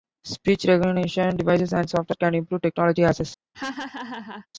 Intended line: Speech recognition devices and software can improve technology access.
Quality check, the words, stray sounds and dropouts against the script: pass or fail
fail